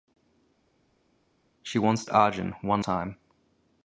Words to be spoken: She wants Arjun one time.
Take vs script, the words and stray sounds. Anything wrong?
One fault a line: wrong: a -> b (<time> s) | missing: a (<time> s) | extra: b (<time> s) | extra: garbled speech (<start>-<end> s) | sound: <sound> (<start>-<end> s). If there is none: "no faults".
no faults